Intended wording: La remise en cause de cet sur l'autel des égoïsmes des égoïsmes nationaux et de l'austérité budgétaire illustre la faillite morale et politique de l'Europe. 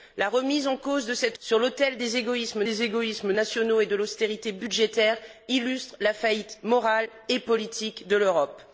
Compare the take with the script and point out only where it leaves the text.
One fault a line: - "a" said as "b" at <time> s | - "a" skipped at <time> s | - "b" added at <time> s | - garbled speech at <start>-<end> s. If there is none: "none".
none